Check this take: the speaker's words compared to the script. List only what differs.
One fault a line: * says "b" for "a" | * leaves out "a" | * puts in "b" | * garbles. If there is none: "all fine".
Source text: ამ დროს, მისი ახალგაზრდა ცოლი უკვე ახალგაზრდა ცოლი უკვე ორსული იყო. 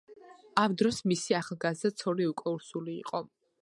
* leaves out "ახალგაზრდა ცოლი უკვე"